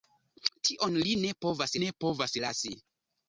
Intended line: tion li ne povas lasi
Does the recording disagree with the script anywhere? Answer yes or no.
yes